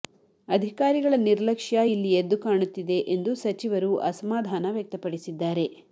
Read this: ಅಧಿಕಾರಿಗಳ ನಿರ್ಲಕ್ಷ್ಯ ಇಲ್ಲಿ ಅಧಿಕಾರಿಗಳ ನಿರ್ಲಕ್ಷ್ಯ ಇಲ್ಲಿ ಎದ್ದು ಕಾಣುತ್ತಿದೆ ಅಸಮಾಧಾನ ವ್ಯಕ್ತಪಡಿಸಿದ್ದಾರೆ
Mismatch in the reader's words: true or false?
true